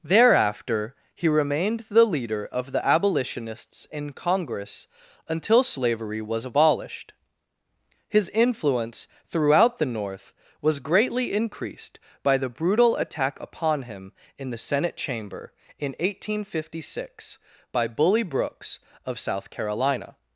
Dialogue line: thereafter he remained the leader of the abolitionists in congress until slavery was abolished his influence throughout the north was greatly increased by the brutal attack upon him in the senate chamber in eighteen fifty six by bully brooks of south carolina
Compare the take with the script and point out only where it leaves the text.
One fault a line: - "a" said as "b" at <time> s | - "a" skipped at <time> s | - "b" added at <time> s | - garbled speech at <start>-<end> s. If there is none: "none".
none